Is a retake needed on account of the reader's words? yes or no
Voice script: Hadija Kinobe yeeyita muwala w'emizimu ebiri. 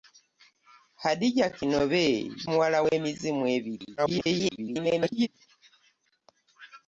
yes